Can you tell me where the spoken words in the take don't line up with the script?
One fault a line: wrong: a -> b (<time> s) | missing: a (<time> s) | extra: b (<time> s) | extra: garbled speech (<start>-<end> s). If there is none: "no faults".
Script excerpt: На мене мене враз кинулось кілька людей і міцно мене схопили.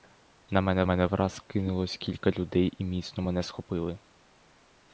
no faults